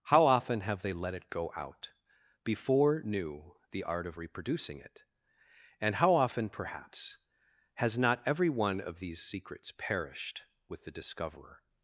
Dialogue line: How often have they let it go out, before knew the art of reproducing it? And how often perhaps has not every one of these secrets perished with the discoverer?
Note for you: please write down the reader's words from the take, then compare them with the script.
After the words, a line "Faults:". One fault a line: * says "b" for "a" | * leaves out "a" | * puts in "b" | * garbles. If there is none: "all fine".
How often have they let it go out, before knew the art of reproducing it? And how often perhaps has not every one of these secrets perished with the discoverer?
Faults:
all fine